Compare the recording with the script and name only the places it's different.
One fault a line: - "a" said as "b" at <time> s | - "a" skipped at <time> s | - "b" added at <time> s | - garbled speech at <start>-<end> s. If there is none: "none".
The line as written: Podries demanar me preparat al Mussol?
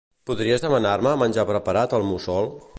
- "menjar" added at 1.2 s